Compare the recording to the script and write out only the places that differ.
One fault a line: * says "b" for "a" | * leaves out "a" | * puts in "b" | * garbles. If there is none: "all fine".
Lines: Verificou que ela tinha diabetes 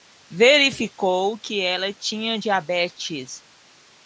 all fine